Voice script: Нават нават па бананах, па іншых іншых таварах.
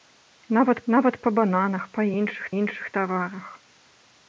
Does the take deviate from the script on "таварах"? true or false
false